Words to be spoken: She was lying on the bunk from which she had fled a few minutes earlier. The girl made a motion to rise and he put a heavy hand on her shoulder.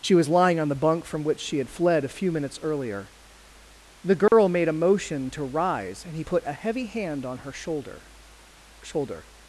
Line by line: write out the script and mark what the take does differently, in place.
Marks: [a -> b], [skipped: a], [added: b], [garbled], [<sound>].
She was lying on the bunk from which she had fled a few minutes earlier. The girl [dropout] made a motion to rise and he put a heavy hand on her shoulder. [added: shoulder]